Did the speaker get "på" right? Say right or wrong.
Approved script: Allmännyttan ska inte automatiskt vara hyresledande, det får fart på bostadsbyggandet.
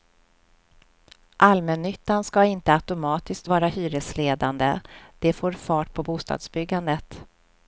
right